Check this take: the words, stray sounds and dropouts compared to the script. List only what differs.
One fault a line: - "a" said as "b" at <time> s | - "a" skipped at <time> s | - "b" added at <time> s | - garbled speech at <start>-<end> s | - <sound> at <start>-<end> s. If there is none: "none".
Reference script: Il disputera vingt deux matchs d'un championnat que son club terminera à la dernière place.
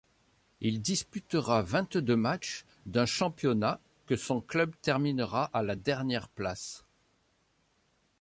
none